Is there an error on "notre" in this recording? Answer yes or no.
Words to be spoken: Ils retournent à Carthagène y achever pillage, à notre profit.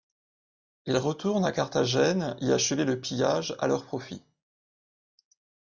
yes